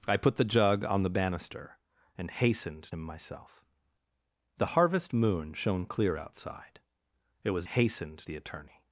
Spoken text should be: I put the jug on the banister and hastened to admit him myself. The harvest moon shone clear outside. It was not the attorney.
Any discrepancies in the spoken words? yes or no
yes